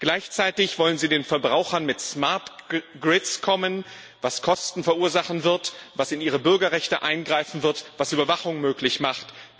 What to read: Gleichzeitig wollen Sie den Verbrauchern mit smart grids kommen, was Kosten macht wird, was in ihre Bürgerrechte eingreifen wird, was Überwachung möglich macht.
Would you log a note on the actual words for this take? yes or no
yes